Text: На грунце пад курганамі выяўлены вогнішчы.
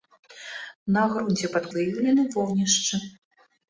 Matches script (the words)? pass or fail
fail